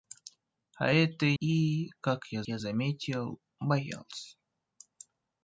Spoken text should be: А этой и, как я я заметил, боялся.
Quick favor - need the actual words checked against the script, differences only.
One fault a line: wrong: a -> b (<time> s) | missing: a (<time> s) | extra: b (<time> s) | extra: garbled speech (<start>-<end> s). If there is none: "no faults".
no faults